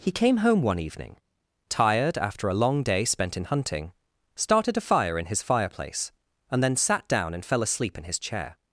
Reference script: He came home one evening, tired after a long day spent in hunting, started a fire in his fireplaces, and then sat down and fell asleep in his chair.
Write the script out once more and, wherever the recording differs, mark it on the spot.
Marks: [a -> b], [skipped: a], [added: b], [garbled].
He came home one evening, tired after a long day spent in hunting, started a fire in his [fireplaces, -> fireplace] and then sat down and fell asleep in his chair.